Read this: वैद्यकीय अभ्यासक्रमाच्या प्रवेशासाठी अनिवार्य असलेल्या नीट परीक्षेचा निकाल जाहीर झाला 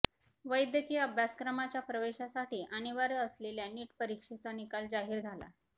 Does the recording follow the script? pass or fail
pass